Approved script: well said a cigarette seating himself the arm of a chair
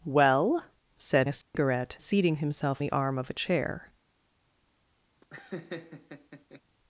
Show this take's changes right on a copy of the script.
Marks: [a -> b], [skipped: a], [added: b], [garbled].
well said a cigarette seating himself the arm of a chair